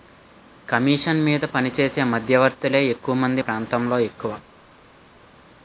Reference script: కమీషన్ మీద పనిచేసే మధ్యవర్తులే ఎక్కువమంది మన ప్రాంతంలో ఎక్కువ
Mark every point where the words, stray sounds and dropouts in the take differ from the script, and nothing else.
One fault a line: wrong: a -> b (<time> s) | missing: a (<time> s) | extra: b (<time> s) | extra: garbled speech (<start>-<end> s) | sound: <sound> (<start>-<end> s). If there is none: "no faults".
missing: మన (3.4 s)